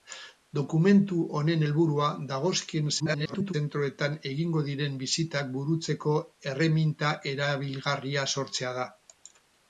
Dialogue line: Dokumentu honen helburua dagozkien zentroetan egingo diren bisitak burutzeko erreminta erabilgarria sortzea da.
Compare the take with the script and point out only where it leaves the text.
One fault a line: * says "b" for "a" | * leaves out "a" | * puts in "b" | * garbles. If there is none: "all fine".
* garbles